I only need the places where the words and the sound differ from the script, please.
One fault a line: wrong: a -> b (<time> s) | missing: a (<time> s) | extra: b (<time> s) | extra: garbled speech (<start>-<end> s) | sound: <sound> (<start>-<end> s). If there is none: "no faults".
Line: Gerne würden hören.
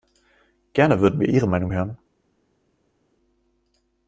extra: wir Ihre Meinung (1.2 s)